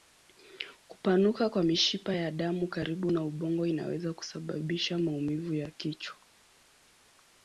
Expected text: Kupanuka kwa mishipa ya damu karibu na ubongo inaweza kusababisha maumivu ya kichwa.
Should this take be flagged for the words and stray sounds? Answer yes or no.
no